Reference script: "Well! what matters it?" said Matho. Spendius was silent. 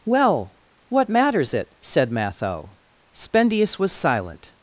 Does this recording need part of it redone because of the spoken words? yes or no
no